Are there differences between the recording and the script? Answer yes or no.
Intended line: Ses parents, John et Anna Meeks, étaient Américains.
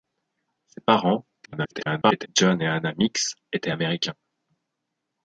yes